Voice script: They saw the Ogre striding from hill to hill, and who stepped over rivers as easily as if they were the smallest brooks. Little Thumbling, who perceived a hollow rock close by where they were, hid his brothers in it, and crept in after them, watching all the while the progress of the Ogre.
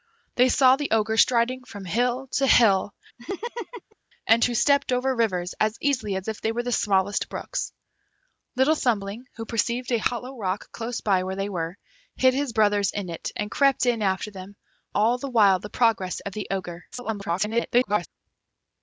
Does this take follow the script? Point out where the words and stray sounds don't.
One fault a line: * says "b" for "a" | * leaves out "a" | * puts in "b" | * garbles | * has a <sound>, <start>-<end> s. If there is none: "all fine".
* has a laugh, 3.2-4.0 s
* leaves out "watching"
* garbles